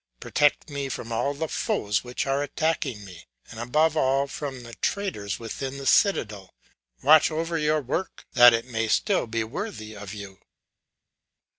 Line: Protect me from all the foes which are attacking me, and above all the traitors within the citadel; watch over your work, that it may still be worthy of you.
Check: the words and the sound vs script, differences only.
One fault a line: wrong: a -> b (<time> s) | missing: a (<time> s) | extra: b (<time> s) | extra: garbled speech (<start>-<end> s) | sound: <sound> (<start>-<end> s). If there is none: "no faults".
extra: from (4.3 s)